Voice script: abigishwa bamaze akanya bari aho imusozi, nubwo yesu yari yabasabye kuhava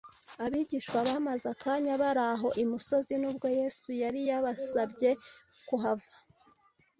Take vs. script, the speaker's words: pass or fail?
pass